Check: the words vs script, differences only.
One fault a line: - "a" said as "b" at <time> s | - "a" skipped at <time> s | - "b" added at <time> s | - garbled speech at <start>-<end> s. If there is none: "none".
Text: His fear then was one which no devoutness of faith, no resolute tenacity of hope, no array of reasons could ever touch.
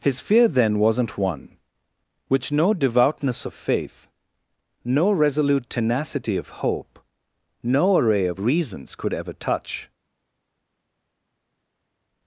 - "was" said as "wasn't" at 0.8 s